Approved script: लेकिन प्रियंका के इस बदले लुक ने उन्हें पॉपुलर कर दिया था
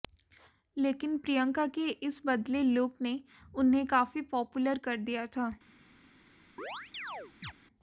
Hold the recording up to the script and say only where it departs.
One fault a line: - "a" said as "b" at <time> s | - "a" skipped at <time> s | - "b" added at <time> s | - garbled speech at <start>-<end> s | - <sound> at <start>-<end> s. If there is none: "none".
- "काफी" added at 3.9 s
- chirp at 6.6-7.5 s